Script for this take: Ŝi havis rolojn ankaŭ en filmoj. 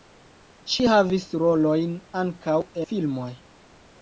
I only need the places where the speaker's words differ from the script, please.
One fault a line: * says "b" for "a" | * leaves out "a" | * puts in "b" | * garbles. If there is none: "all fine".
* leaves out "en"